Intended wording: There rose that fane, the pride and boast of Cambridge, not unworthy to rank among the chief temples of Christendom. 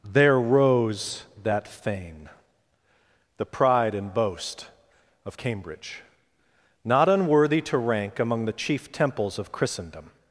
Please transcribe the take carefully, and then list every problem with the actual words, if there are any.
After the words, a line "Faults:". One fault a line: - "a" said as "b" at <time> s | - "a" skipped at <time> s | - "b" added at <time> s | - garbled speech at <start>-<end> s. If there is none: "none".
There rose that fane, the pride and boast of Cambridge, not unworthy to rank among the chief temples of Christendom.
Faults:
none